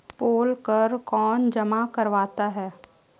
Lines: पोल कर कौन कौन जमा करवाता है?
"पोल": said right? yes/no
yes